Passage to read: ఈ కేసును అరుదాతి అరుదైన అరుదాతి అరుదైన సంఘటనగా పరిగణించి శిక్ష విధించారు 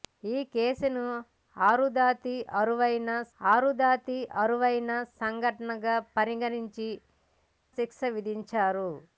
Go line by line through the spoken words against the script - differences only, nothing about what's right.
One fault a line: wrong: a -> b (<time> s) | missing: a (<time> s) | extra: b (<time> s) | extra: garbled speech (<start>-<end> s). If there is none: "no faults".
no faults